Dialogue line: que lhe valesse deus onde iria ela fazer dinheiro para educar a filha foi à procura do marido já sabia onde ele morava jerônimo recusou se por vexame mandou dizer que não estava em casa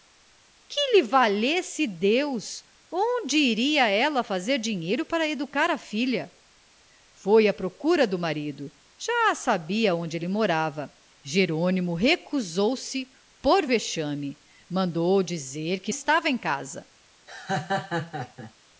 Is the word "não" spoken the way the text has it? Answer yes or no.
no